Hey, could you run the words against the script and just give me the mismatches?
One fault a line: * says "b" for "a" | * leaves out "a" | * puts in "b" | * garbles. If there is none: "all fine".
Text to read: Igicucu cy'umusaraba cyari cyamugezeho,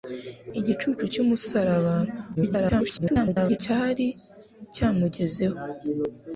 * garbles